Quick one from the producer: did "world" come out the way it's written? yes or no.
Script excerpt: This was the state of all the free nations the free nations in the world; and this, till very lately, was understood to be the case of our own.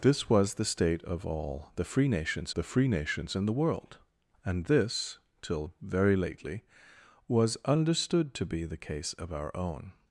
yes